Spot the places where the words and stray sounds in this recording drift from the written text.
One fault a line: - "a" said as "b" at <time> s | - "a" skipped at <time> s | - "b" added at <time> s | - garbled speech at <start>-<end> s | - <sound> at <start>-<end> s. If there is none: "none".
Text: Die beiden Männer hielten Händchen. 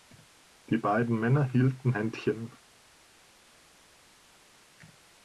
none